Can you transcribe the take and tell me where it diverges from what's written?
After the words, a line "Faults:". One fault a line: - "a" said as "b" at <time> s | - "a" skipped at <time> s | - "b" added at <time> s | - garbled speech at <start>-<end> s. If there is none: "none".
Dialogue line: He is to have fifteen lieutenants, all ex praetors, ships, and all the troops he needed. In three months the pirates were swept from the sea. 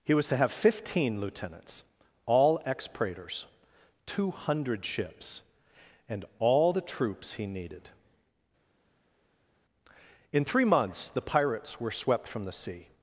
He was to have fifteen lieutenants, all ex praetors, two hundred ships, and all the troops he needed. In three months the pirates were swept from the sea.
Faults:
- "is" said as "was" at 0.1 s
- "two hundred" added at 4.0 s